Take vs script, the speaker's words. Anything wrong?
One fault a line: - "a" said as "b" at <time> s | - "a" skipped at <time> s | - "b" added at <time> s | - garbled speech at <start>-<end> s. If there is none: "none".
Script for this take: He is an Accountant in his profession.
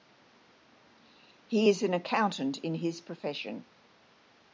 none